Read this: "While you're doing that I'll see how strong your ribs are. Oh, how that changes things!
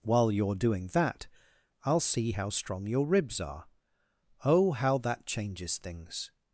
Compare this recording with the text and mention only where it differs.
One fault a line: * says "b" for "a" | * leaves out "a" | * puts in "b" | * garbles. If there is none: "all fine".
all fine